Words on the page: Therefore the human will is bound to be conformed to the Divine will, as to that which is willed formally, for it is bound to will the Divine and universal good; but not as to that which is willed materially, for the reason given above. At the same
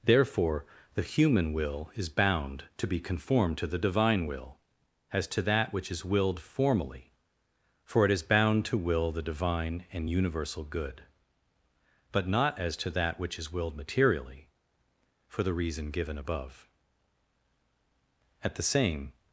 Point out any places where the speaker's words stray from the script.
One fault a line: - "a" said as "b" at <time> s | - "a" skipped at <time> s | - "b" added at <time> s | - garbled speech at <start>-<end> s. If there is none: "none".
none